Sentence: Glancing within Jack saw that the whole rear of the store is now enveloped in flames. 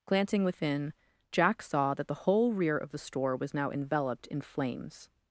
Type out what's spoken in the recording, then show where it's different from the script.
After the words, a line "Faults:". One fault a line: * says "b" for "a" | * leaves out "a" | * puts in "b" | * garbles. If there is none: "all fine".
Glancing within Jack saw that the whole rear of the store was now enveloped in flames.
Faults:
* says "was" for "is"